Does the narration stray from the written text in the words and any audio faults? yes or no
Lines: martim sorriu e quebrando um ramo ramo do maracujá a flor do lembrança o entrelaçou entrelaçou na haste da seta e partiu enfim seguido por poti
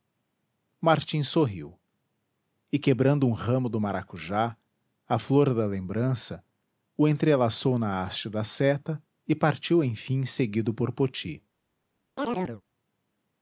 yes